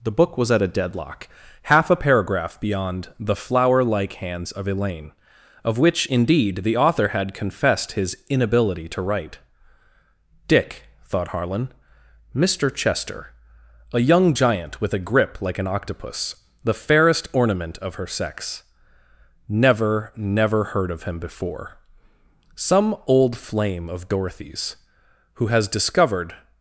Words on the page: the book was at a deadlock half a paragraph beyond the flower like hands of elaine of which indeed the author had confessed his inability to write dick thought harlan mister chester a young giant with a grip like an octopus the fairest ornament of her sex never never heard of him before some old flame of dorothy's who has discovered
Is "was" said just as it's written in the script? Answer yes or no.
yes